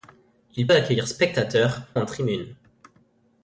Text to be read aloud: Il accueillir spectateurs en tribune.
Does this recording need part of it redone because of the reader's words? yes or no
no